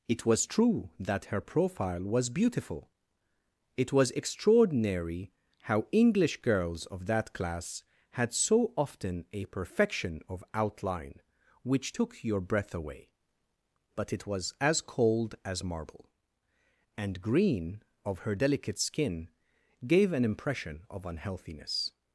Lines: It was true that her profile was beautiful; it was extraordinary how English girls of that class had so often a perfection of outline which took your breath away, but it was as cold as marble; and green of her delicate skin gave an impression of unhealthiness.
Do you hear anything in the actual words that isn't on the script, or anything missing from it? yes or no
no